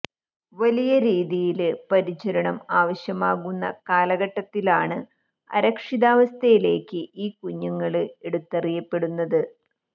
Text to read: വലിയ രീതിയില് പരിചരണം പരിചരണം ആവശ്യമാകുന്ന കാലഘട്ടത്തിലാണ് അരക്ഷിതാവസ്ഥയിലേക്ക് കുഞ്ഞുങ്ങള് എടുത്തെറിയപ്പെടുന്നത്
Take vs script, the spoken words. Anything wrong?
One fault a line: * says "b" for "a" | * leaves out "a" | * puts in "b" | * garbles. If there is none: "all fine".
* leaves out "പരിചരണം"
* puts in "ഈ"